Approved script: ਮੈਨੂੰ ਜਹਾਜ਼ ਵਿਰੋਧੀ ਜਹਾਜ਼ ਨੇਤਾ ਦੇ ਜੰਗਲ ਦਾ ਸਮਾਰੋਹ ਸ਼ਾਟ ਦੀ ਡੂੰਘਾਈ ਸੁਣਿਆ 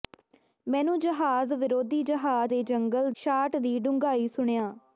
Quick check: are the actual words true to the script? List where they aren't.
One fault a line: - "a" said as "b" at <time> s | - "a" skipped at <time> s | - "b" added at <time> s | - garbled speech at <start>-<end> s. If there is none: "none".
- "ਨੇਤਾ" skipped at 2.5 s
- "ਦਾ ਸਮਾਰੋਹ" skipped at 3.1 s